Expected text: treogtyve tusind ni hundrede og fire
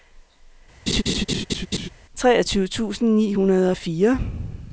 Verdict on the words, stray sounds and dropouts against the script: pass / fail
fail